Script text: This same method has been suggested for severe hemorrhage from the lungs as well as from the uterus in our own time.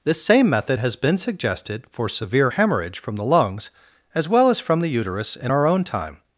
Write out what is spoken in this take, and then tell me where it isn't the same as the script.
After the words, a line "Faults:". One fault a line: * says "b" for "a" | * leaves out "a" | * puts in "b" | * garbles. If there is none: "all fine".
This same method has been suggested for severe hemorrhage from the lungs as well as from the uterus in our own time.
Faults:
all fine